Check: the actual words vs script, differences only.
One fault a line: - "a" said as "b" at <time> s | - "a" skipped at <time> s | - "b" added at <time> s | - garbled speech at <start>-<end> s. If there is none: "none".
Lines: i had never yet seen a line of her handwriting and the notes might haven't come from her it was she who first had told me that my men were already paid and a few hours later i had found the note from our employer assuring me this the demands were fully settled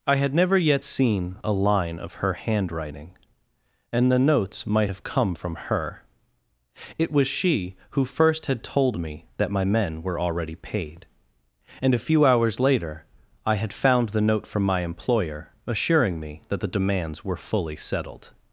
- "haven't" said as "have" at 4.9 s
- "our" said as "my" at 14.6 s
- "this" said as "that" at 16.5 s